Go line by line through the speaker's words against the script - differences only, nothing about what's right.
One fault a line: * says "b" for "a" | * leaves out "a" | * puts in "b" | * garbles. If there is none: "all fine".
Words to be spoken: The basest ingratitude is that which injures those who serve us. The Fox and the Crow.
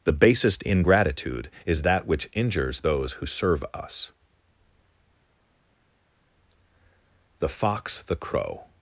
* leaves out "and"